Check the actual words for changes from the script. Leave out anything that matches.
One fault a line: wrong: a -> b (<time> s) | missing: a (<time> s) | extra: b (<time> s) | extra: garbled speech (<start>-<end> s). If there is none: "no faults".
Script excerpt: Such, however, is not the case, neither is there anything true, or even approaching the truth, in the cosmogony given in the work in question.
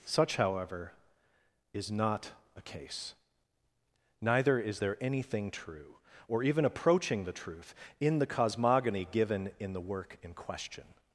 wrong: the -> a (2.5 s)